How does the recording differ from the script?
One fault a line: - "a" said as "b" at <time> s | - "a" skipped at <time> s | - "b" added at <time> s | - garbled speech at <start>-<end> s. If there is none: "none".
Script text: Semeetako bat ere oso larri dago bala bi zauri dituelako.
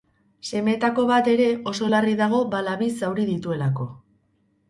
none